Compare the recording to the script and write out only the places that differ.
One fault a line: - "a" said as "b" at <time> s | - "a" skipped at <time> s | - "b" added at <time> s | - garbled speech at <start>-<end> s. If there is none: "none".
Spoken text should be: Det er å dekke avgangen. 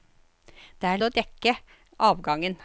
none